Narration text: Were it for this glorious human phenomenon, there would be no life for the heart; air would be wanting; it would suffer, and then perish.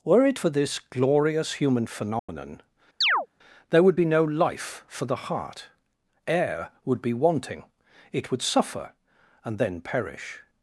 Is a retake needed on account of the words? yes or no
no